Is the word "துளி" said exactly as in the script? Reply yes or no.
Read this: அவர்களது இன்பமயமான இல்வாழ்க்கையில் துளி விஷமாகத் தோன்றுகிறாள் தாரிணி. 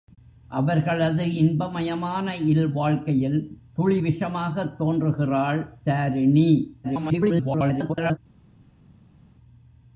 yes